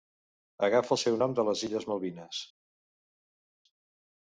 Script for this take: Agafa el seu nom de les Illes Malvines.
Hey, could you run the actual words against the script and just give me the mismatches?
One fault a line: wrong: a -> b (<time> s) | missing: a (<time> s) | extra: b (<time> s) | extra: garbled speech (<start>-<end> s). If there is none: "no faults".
no faults